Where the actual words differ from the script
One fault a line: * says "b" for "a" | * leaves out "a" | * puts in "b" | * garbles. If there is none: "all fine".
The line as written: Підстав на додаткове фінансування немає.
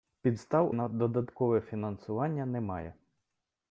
all fine